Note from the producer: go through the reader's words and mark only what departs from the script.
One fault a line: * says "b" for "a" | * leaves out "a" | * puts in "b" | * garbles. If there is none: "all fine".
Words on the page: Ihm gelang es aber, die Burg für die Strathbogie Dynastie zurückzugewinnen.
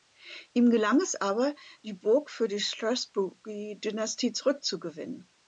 all fine